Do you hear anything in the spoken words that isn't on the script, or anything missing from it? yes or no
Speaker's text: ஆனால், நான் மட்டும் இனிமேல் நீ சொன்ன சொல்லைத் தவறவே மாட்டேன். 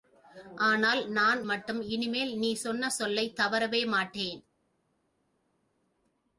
no